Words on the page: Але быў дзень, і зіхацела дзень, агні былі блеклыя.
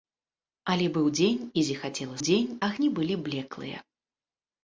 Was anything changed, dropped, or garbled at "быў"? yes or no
no